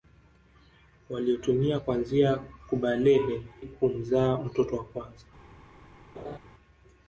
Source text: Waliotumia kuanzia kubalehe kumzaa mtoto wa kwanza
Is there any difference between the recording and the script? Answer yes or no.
no